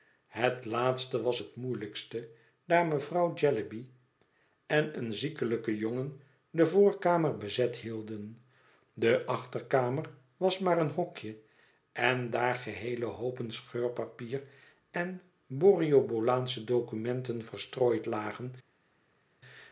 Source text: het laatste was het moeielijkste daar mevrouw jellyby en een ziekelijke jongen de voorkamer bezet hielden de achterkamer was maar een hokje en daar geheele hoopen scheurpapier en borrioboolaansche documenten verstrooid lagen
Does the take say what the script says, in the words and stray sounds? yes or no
yes